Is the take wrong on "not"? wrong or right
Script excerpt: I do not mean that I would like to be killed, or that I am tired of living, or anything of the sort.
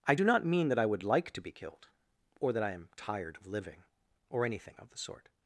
right